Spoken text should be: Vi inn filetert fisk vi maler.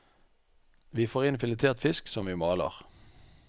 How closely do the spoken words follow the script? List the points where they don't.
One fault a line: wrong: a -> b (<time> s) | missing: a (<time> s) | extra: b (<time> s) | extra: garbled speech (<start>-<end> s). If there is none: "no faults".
extra: får (1.1 s)
extra: som (2.1 s)